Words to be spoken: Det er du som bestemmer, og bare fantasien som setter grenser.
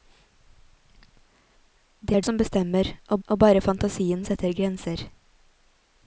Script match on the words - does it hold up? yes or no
no